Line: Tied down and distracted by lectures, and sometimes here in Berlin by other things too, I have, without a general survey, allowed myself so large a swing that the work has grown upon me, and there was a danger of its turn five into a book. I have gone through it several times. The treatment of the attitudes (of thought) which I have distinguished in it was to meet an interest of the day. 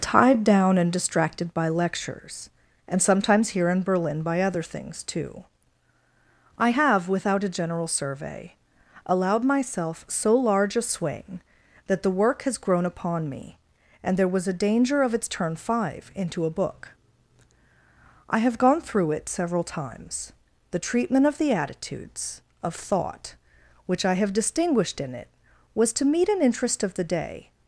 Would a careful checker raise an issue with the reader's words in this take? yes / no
no